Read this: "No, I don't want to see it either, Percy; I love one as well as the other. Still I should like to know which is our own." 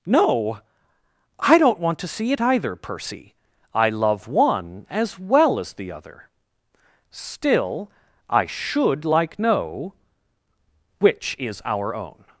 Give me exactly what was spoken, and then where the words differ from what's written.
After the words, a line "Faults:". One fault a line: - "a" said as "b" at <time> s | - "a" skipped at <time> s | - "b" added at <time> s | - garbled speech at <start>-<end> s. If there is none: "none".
"No, I don't want to see it either, Percy; I love one as well as the other. Still I should like know which is our own."
Faults:
- "to" skipped at 9.4 s